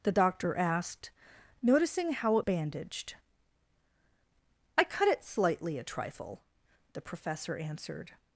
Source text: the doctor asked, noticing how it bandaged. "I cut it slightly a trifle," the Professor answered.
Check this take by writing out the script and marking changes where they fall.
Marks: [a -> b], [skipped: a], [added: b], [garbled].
the doctor asked, noticing how it bandaged. "I cut it slightly a trifle," the Professor answered.